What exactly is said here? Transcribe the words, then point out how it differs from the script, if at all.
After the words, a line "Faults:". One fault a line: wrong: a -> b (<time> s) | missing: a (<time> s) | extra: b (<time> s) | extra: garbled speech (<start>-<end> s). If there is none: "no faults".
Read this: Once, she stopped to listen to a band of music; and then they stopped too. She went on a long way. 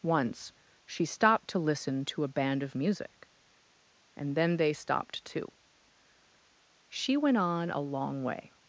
Once, she stopped to listen to a band of music; and then they stopped too. She went on a long way.
Faults:
no faults